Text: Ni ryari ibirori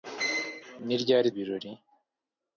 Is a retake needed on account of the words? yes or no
no